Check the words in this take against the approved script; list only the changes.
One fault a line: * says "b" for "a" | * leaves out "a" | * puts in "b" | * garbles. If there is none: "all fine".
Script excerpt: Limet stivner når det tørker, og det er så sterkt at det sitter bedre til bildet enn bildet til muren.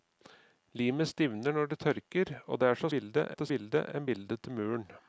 * says "bildet" for "sterkt"
* leaves out "sitter bedre til"